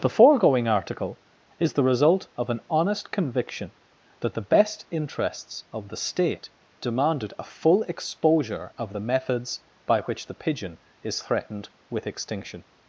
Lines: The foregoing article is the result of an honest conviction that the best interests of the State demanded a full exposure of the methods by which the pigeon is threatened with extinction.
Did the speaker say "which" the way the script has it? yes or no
yes